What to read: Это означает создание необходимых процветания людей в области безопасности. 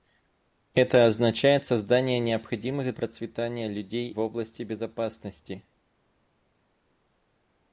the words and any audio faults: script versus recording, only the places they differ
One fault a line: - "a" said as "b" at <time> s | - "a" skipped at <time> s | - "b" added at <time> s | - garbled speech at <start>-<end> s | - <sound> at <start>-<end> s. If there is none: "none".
none